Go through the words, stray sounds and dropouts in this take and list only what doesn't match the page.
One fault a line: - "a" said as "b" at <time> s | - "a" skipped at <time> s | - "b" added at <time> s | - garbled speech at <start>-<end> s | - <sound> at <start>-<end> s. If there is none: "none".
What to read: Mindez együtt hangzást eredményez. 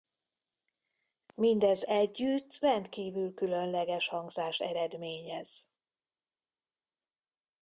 - "rendkívül különleges" added at 2.6 s